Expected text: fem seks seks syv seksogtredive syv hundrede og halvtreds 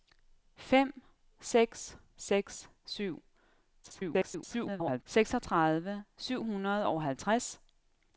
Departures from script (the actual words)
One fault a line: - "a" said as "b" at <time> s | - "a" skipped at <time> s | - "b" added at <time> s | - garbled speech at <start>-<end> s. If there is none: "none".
- garbled speech at 3.8-5.0 s